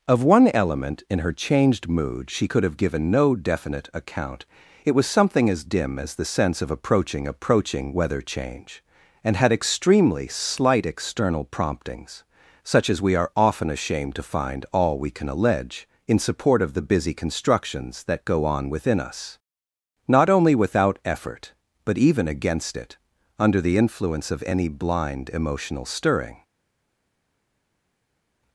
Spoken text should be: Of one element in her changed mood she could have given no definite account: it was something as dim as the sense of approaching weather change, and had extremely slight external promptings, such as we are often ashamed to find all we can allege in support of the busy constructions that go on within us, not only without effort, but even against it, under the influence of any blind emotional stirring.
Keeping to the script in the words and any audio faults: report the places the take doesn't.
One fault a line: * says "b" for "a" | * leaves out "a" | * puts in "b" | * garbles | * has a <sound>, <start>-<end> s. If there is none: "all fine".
* puts in "approaching"